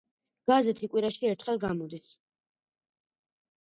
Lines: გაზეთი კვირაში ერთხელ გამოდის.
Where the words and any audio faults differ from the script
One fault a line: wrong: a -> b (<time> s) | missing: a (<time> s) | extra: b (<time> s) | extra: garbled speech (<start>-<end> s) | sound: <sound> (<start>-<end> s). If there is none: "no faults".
no faults